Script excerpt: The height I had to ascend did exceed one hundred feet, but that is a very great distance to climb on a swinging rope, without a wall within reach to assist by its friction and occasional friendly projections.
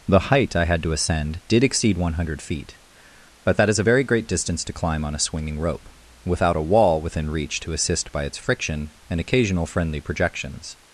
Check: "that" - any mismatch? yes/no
no